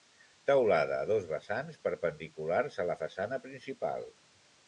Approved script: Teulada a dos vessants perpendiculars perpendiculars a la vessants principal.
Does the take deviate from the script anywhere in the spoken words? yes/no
yes